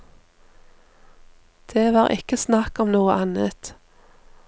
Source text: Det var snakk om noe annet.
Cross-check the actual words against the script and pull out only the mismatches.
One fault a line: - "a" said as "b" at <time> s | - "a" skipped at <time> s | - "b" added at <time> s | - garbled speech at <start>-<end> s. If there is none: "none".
- "ikke" added at 2.1 s